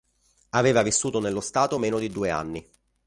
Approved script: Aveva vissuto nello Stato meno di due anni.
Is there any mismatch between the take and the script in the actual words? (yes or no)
no